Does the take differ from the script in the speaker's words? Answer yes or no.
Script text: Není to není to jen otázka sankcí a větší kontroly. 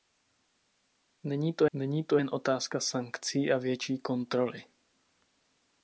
no